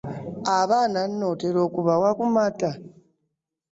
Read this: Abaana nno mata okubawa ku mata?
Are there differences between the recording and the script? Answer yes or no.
yes